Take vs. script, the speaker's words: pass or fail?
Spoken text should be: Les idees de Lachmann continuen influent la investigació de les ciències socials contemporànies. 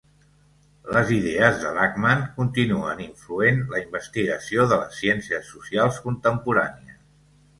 pass